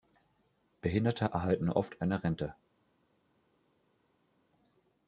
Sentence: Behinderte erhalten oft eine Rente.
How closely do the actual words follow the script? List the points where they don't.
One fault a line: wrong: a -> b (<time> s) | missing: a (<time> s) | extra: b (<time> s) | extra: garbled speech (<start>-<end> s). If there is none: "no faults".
no faults